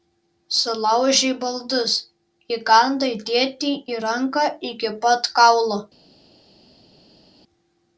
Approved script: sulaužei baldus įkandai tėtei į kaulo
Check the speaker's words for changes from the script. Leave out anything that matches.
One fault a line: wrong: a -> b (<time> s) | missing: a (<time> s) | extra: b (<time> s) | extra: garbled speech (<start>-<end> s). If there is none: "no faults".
extra: ranką iki pat (4.1 s)